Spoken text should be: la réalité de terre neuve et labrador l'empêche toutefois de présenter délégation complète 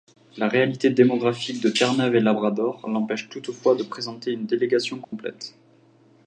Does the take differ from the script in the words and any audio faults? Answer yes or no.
yes